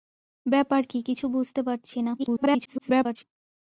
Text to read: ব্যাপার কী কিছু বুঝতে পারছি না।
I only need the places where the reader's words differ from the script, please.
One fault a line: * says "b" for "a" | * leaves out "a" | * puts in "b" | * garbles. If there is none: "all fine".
* garbles